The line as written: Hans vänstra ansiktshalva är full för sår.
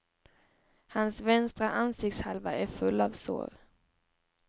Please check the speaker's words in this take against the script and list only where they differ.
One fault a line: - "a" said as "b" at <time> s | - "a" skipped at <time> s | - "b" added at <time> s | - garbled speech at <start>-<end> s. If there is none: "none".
- "för" said as "av" at 3.0 s